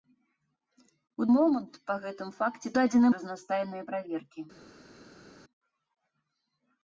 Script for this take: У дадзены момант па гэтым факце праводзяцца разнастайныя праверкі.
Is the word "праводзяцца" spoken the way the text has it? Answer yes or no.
no